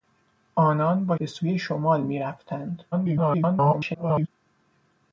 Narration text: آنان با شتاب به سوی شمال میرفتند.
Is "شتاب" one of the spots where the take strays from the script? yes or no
yes